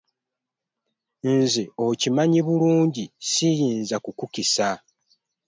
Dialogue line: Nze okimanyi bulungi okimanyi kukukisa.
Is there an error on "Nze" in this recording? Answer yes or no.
no